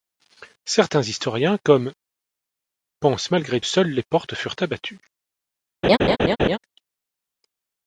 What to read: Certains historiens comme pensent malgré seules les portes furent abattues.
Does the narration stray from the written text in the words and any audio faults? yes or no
yes